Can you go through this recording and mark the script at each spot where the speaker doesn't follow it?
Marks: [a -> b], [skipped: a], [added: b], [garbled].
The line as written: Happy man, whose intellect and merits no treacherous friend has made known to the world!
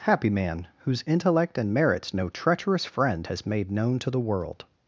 Happy man, whose intellect and merits no treacherous friend has made known to the world!